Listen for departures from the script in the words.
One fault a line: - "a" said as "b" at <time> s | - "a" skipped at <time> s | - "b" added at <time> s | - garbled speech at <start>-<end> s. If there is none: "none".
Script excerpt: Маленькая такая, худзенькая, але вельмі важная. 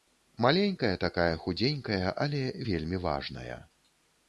none